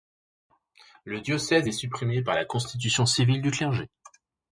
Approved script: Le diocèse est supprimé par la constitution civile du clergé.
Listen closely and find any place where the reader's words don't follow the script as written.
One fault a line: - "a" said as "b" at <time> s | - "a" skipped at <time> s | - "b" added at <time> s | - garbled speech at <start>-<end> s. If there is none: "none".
none